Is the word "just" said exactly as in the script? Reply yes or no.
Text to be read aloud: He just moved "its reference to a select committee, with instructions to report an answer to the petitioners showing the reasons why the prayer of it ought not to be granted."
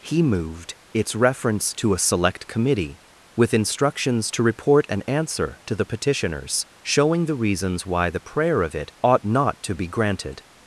no